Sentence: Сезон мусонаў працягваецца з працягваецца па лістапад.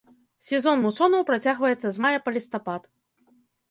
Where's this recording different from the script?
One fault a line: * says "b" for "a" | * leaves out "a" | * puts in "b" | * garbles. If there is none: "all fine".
* says "мая" for "працягваецца"